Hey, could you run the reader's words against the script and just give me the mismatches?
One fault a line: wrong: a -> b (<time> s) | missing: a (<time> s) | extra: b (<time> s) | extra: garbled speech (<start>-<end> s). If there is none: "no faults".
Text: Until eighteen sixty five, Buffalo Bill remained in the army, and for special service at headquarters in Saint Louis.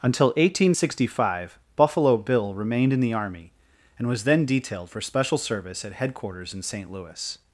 extra: was then detailed (4.1 s)